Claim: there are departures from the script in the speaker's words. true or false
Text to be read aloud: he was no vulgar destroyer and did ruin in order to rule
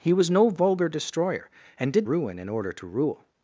false